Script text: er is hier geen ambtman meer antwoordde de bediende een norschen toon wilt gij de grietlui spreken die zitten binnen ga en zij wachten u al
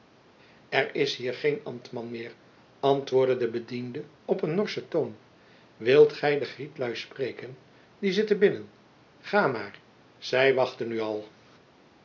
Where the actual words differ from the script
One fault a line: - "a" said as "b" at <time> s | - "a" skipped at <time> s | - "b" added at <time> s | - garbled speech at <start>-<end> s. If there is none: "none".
- "op" added at 4.2 s
- "en" said as "maar" at 9.5 s